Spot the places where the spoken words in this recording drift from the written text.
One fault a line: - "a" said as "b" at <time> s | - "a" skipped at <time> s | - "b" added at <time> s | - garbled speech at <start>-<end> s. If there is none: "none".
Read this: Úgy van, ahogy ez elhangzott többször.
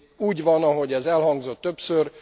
none